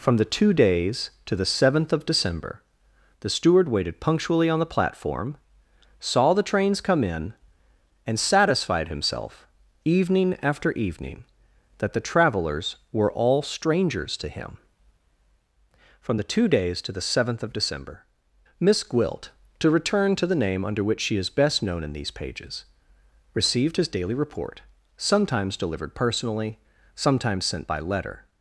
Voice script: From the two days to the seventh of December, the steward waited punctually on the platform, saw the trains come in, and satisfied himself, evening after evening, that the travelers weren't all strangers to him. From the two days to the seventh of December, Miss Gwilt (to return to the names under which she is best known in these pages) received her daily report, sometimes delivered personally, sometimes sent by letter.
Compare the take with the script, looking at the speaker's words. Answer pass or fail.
fail